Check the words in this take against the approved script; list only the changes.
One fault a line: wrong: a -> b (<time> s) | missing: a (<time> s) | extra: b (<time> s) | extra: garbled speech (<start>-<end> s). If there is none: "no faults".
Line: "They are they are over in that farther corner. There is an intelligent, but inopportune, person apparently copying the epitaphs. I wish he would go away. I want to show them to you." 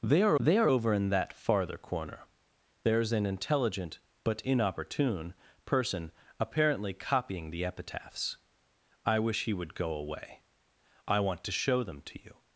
no faults